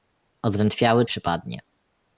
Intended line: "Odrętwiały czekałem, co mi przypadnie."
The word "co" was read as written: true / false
false